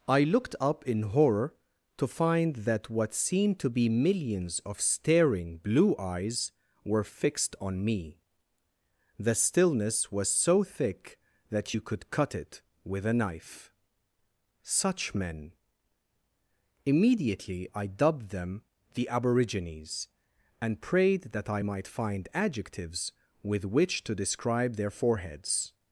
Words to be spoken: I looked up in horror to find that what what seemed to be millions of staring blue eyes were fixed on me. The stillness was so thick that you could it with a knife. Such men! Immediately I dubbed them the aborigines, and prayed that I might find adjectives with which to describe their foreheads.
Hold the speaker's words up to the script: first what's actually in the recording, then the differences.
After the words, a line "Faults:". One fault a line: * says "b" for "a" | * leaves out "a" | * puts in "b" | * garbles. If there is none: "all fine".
I looked up in horror to find that what seemed to be millions of staring blue eyes were fixed on me. The stillness was so thick that you could cut it with a knife. Such men! Immediately I dubbed them the aborigines, and prayed that I might find adjectives with which to describe their foreheads.
Faults:
* leaves out "what"
* puts in "cut"